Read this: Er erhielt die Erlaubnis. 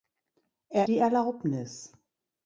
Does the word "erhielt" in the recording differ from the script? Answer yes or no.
yes